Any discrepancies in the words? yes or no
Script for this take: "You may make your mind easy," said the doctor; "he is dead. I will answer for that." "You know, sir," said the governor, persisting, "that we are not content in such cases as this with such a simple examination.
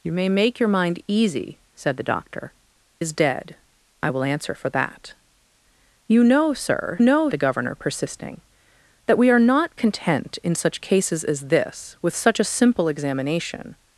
yes